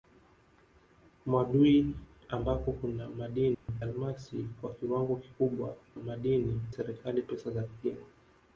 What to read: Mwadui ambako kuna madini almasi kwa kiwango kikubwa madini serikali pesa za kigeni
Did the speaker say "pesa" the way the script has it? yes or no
yes